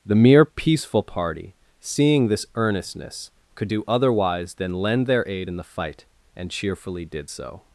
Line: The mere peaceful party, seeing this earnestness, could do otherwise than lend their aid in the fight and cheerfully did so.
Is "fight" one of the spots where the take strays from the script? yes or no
no